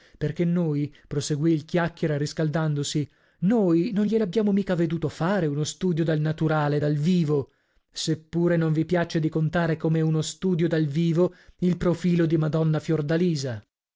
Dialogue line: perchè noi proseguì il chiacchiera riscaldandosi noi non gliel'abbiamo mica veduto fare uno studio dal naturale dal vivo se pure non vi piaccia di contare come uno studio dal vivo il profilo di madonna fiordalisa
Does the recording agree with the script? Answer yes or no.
yes